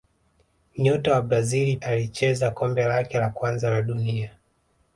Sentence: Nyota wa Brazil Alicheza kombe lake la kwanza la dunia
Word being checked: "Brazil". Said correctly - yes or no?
yes